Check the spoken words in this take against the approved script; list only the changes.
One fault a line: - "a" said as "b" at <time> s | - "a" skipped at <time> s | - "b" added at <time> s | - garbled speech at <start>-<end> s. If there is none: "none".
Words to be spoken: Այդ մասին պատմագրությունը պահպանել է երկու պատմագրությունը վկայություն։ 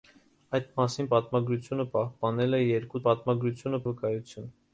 none